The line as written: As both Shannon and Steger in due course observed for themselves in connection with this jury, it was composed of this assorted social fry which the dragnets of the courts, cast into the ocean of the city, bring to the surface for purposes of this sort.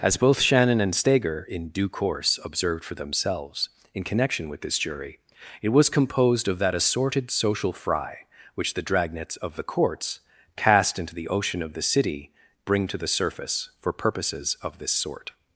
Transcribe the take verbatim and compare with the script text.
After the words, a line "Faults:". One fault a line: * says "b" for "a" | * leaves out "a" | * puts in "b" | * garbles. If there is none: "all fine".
As both Shannon and Steger in due course observed for themselves in connection with this jury, it was composed of that assorted social fry which the dragnets of the courts, cast into the ocean of the city, bring to the surface for purposes of this sort.
Faults:
* says "that" for "this"